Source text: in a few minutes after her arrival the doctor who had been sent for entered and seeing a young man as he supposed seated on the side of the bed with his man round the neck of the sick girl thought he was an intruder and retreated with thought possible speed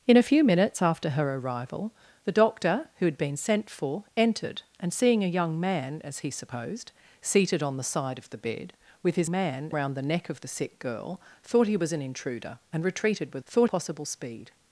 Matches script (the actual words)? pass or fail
pass